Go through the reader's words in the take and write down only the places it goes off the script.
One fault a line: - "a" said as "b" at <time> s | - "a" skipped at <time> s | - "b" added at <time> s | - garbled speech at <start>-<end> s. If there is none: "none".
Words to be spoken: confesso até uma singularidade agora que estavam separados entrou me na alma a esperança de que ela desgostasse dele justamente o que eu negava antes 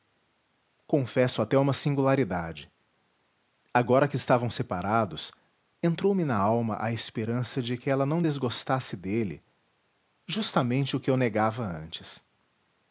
- "não" added at 8.0 s